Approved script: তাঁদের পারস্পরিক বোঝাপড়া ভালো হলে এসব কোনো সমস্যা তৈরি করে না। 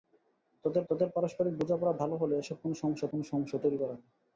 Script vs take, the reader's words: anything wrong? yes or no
yes